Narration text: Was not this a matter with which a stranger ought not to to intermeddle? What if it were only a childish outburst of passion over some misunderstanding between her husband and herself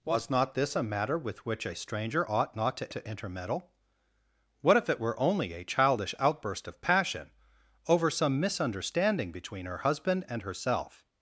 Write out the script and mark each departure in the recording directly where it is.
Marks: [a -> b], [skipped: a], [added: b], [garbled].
Was not this a matter with which a stranger ought not to to intermeddle? What if it were only a childish outburst of passion over some misunderstanding between her husband and herself